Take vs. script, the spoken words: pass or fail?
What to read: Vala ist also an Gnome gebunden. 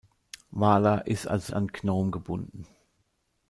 pass